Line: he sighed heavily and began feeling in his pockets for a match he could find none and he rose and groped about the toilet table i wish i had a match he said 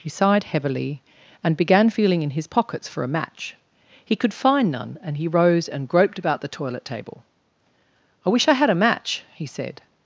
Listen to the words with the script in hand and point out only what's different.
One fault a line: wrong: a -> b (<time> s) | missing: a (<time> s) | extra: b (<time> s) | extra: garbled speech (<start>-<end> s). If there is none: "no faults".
no faults